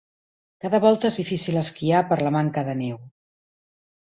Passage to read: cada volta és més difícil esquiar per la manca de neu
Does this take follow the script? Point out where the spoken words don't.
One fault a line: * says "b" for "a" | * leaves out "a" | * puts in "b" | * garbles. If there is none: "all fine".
* leaves out "més"